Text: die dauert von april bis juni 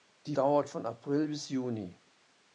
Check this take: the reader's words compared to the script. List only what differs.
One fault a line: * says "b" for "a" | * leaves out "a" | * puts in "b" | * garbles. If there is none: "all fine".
all fine